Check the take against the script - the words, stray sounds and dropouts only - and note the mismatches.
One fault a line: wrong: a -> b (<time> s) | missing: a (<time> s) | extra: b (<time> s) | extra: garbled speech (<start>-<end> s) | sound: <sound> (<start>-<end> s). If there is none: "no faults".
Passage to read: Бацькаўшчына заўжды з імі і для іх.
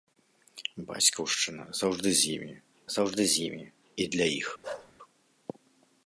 extra: заўжды з імі (2.9 s)
sound: bark (4.6-4.9 s)